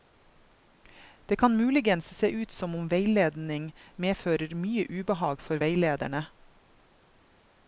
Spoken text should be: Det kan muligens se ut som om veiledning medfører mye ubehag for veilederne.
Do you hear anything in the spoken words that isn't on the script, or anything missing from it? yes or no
no